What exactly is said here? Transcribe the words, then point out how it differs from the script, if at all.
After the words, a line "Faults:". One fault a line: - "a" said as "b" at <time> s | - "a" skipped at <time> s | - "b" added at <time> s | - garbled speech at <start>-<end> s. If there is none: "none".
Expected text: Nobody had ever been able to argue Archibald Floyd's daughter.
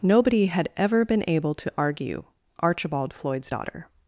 Nobody had ever been able to argue Archibald Floyd's daughter.
Faults:
none